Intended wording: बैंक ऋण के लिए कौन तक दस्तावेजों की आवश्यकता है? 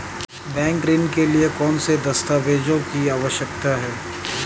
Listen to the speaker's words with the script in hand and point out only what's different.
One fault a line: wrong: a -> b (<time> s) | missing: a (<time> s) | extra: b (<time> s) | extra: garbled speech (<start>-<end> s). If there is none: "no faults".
wrong: तक -> से (1.8 s)